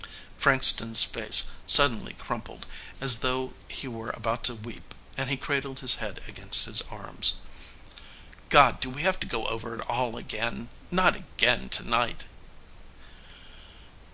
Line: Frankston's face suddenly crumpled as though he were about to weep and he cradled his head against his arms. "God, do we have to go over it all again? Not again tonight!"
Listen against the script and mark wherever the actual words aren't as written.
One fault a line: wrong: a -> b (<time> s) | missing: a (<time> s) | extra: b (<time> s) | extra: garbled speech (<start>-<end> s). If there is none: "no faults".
no faults